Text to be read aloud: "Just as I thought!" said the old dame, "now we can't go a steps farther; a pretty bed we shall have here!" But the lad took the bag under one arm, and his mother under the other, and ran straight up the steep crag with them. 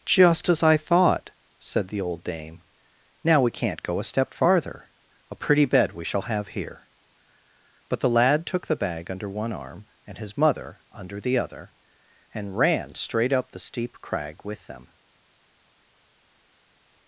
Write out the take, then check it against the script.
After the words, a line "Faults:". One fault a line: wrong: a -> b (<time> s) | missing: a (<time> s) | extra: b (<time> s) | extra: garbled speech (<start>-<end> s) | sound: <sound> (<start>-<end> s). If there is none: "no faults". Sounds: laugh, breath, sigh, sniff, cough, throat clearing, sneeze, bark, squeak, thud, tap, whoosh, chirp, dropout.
"Just as I thought!" said the old dame, "now we can't go a step farther; a pretty bed we shall have here!" But the lad took the bag under one arm, and his mother under the other, and ran straight up the steep crag with them.
Faults:
wrong: steps -> step (4.0 s)